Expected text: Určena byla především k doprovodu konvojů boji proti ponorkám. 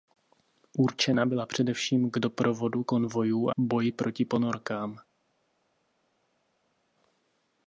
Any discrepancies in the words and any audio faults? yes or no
no